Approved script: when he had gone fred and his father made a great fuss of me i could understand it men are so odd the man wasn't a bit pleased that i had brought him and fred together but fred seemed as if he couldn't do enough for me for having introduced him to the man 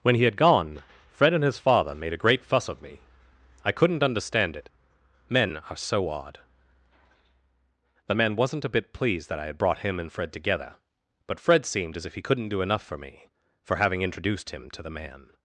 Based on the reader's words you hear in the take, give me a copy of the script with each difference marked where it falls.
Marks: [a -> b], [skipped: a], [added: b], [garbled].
when he had gone fred and his father made a great fuss of me i [could -> couldn't] understand it men are so odd the man wasn't a bit pleased that i had brought him and fred together but fred seemed as if he couldn't do enough for me for having introduced him to the man